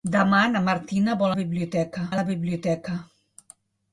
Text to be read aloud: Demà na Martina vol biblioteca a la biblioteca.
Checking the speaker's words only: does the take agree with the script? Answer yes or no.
yes